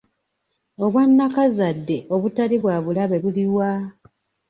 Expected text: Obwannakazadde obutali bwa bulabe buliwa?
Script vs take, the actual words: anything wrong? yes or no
no